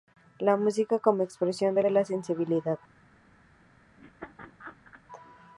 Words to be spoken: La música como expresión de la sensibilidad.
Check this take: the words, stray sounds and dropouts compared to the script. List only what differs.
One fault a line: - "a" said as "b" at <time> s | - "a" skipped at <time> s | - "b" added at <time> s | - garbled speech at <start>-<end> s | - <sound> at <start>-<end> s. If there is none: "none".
- "de" added at 1.8 s
- laugh at 4.0-5.0 s